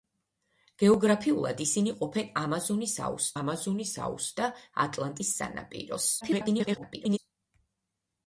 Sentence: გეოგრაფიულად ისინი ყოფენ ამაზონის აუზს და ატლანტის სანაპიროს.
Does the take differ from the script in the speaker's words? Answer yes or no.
yes